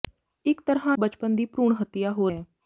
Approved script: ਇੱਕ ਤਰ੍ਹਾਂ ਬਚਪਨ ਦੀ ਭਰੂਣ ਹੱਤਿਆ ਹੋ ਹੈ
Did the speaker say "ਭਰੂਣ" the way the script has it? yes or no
yes